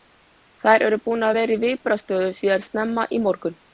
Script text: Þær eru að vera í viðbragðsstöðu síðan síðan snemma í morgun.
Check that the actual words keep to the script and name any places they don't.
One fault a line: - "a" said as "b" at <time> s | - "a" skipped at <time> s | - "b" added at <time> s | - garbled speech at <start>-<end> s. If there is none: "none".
- "búnar" added at 1.1 s
- "síðan" skipped at 2.6 s